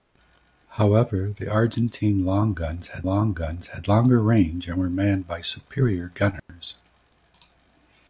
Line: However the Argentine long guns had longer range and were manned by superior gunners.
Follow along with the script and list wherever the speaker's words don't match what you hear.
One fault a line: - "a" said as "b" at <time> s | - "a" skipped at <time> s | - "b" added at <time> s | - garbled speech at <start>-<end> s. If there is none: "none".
- "long guns had" added at 3.0 s